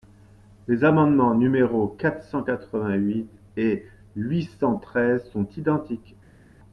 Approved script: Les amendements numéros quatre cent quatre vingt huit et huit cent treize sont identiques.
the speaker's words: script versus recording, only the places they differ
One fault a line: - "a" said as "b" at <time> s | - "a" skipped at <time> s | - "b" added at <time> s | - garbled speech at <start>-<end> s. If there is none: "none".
none